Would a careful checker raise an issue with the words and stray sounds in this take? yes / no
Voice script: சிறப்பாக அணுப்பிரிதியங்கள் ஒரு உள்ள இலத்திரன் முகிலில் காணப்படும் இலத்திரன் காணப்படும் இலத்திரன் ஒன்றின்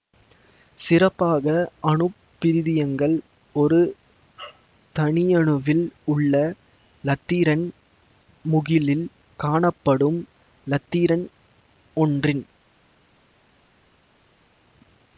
yes